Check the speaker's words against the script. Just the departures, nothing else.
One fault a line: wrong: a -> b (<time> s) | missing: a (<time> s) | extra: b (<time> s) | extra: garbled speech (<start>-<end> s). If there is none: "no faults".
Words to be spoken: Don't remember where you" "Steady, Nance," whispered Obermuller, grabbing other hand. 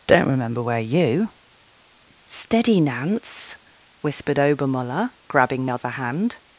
no faults